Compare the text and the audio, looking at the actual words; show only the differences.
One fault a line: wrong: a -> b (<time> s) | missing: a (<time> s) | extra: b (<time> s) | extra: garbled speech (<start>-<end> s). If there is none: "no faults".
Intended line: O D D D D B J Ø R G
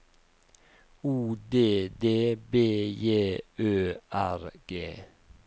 missing: D D (2.4 s)